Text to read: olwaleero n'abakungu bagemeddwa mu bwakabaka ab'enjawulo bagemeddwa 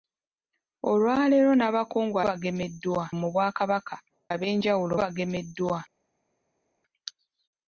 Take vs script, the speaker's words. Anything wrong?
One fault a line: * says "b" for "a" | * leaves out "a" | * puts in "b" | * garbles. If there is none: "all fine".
all fine